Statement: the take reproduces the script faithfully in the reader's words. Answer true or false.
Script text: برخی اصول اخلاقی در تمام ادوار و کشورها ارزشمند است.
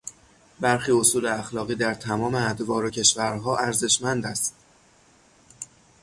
true